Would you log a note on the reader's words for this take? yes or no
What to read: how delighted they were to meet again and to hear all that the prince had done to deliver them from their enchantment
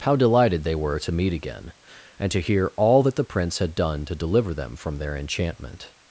no